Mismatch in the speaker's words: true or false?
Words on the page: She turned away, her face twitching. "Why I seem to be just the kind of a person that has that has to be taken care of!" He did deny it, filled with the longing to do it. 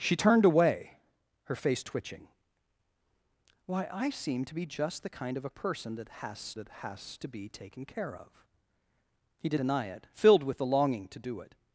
false